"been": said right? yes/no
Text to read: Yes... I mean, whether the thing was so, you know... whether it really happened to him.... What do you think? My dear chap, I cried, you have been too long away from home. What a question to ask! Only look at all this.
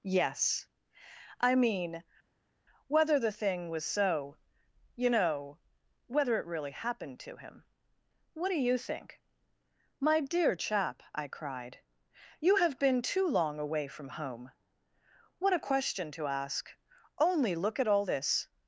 yes